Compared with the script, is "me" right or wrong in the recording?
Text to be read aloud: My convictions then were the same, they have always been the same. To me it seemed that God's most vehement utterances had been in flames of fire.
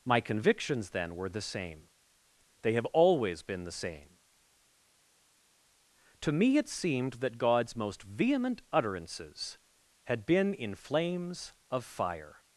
right